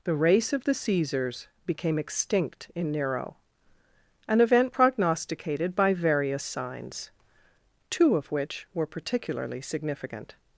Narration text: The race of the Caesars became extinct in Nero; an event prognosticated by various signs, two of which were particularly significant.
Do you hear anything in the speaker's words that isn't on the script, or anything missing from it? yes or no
no